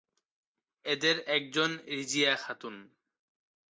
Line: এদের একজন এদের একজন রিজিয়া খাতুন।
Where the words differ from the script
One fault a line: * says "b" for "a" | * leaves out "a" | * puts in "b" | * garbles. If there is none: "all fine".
* leaves out "এদের একজন"